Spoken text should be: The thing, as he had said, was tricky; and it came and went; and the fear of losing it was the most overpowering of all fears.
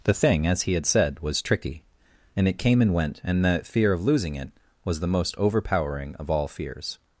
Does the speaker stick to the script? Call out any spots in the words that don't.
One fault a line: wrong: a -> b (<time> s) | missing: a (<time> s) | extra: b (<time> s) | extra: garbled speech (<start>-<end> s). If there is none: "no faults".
no faults